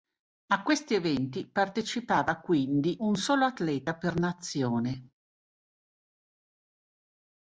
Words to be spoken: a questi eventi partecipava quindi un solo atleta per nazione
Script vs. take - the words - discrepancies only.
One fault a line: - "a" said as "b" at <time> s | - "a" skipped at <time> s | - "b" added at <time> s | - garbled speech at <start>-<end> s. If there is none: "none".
none